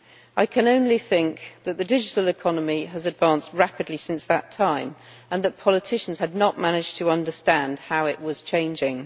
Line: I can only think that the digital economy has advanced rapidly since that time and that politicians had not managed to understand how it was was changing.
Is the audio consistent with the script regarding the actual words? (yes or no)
no